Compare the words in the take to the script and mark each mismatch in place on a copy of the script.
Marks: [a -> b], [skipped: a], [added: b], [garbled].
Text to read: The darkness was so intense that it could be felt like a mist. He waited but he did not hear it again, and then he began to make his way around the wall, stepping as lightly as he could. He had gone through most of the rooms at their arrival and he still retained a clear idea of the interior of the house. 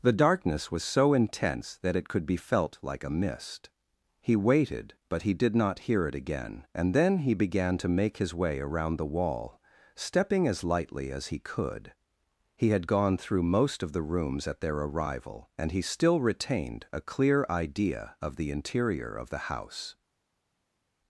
The darkness was so intense that it could be felt like a mist. He waited but he did not hear it again, and then he began to make his way around the wall, stepping as lightly as he could. He had gone through most of the rooms at their arrival and he still retained a clear idea of the interior of the house.